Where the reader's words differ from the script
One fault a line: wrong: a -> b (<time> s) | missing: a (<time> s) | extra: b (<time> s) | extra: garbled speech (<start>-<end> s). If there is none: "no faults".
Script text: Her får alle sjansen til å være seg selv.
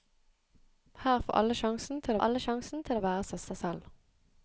extra: alle sjansen til (2.2 s)
extra: seg (3.5 s)